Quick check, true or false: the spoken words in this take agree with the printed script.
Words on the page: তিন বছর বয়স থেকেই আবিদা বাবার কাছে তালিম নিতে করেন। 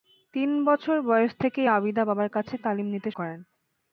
true